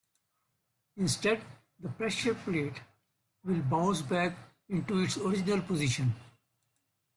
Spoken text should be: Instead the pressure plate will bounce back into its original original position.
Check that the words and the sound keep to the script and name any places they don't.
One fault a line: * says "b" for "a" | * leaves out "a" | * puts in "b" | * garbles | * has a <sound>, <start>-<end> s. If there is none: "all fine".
* leaves out "original"